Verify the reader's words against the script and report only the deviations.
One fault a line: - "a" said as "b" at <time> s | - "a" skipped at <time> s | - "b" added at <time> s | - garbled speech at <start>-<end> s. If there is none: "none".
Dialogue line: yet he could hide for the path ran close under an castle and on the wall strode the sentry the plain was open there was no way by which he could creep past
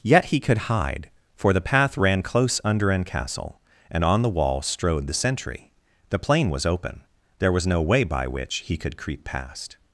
none